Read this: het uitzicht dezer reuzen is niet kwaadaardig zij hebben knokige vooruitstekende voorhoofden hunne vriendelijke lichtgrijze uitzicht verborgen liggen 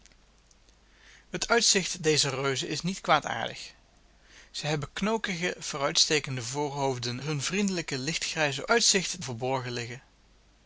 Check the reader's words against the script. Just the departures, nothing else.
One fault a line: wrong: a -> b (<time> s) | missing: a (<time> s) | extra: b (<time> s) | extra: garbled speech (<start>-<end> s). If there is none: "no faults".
no faults